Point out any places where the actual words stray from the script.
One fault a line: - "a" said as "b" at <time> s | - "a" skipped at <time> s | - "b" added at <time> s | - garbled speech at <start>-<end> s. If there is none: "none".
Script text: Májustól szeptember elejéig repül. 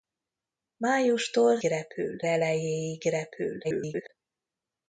- "szeptember" said as "repül" at 1.6 s
- garbled speech at 3.6-4.1 s